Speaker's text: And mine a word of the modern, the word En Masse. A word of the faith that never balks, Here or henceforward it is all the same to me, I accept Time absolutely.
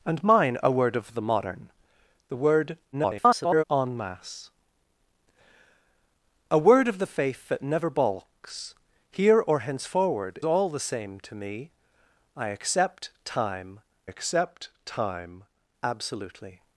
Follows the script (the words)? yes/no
no